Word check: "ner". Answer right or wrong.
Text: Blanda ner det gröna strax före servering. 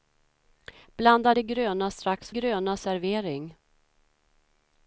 wrong